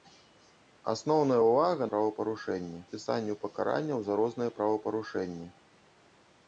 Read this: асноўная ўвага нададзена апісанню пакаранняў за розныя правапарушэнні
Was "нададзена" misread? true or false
true